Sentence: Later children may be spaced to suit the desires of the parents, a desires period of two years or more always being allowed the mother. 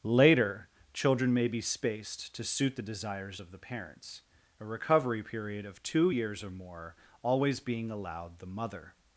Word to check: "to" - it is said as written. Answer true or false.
true